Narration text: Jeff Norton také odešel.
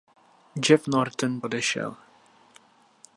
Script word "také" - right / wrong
wrong